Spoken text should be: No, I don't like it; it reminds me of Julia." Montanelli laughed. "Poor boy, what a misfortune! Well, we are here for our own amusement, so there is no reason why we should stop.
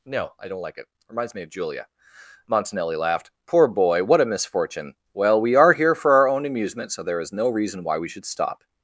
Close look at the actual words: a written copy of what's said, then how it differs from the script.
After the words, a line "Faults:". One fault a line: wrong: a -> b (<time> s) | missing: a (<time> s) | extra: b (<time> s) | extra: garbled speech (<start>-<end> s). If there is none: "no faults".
No, I don't like it; reminds me of Julia." Montanelli laughed. "Poor boy, what a misfortune! Well, we are here for our own amusement, so there is no reason why we should stop.
Faults:
missing: it (0.8 s)